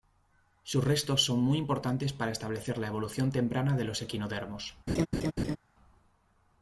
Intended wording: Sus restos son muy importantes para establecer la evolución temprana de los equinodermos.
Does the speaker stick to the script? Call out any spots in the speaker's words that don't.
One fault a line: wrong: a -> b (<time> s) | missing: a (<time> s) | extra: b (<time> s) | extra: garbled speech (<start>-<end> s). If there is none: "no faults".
no faults